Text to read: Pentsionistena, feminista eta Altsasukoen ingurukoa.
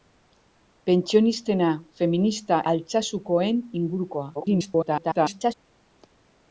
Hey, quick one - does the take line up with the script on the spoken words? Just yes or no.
no